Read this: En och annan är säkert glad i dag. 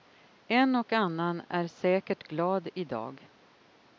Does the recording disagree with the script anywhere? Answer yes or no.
no